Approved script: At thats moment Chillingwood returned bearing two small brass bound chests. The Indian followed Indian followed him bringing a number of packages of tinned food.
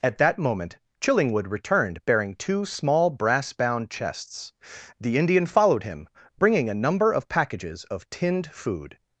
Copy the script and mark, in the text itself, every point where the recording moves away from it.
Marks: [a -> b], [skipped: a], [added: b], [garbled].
At [thats -> that] moment Chillingwood returned bearing two small brass bound chests. The Indian followed [skipped: Indian followed] him bringing a number of packages of tinned food.